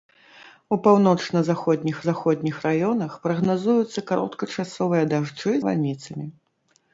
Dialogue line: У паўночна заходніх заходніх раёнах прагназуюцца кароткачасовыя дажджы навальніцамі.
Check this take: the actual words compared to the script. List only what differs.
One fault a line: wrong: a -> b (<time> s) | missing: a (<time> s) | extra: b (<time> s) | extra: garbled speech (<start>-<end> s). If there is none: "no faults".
no faults